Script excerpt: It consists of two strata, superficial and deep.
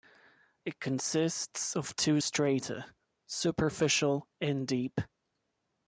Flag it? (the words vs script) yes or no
no